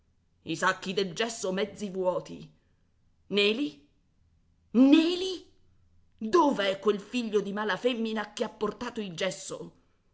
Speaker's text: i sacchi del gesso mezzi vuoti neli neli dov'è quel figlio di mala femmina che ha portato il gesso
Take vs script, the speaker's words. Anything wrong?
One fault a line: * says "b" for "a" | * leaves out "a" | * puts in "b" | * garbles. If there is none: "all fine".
all fine